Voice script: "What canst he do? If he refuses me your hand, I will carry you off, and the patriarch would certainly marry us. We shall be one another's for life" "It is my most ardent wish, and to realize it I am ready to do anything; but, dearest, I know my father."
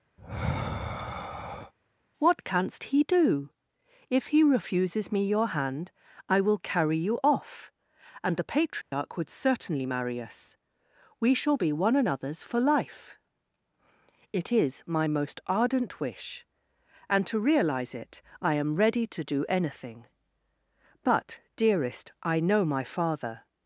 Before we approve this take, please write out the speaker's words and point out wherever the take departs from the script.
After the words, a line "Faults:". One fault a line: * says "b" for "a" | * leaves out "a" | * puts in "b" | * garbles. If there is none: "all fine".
"What canst he do? If he refuses me your hand, I will carry you off, and the patriarch would certainly marry us. We shall be one another's for life" "It is my most ardent wish, and to realize it I am ready to do anything; but, dearest, I know my father."
Faults:
all fine